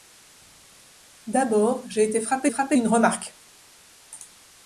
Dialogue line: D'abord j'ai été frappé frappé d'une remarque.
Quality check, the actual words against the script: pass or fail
pass